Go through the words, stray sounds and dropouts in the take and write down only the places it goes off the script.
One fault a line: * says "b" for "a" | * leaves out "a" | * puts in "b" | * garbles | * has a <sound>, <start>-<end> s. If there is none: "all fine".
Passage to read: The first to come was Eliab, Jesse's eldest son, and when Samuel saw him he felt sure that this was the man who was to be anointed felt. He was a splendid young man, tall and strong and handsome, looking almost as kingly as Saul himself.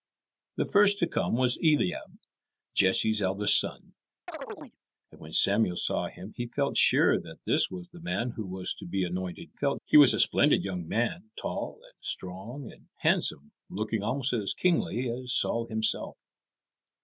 * has a chirp, 4.3-4.8 s